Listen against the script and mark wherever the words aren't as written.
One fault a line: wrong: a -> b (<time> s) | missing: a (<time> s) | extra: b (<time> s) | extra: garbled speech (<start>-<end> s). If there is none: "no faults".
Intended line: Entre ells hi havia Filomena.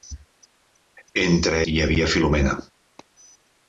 missing: ells (1.6 s)